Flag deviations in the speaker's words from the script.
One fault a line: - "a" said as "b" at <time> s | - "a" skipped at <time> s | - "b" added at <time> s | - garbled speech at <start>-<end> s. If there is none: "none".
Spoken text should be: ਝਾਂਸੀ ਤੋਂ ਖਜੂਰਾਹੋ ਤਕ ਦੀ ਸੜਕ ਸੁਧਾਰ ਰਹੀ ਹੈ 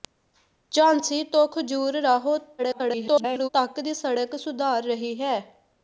- garbled speech at 2.6-3.5 s